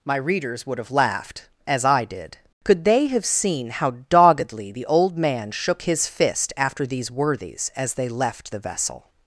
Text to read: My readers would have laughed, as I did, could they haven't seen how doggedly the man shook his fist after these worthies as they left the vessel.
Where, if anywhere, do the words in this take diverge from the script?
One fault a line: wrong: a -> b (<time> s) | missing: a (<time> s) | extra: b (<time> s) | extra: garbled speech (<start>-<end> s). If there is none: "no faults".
wrong: haven't -> have (3.1 s)
extra: old (4.9 s)